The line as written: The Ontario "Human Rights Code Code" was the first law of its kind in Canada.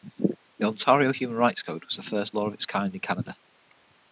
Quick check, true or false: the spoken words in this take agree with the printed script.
false